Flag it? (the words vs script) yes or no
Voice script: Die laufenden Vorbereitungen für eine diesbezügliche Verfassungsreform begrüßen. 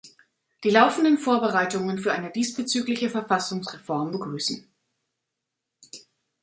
no